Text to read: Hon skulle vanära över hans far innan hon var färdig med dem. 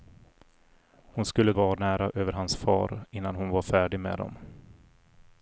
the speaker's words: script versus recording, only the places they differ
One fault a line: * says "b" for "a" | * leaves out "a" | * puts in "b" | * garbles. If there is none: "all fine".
all fine